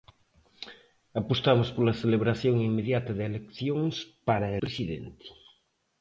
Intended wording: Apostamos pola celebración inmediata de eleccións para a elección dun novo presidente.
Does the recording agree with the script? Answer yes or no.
no